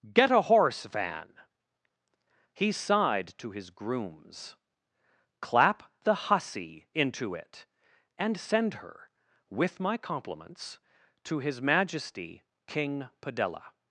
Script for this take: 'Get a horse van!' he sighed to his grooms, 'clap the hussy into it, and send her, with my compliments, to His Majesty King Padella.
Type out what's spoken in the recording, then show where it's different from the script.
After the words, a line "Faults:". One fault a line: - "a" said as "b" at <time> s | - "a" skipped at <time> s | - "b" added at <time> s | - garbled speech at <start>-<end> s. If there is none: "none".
'Get a horse van!' he sighed to his grooms, 'clap the hussy into it, and send her, with my compliments, to His Majesty King Padella.
Faults:
none